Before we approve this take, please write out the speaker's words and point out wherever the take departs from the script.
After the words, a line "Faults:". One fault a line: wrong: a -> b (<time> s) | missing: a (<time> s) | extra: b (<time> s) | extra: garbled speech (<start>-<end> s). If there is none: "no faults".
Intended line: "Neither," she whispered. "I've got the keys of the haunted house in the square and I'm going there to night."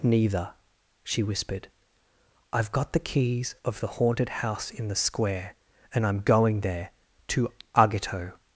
"Neither," she whispered. "I've got the keys of the haunted house in the square and I'm going there to agito."
Faults:
wrong: night -> agito (7.8 s)